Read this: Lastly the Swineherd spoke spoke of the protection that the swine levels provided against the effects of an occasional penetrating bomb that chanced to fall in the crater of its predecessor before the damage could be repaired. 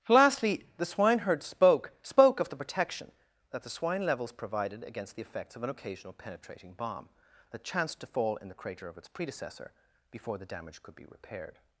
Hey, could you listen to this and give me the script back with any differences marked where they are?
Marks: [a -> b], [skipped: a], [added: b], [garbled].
Lastly the Swineherd spoke spoke of the protection that the swine levels provided against the effects of an occasional penetrating bomb that chanced to fall in the crater of its predecessor before the damage could be repaired.